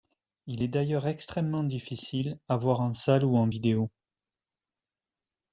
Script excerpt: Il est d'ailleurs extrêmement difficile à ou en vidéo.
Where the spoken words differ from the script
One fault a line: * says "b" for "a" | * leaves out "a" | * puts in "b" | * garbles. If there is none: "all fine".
* puts in "voir en salle"